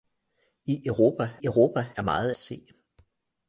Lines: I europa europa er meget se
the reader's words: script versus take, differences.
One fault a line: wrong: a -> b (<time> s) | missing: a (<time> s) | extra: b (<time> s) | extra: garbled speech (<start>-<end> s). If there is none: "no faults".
no faults